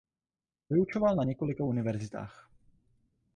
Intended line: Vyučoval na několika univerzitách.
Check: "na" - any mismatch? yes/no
no